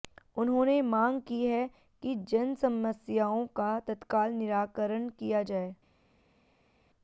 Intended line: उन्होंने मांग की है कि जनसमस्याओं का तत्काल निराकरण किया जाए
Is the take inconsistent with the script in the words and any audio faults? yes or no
no